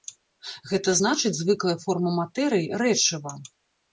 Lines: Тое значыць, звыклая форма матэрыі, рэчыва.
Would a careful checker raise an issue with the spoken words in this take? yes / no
yes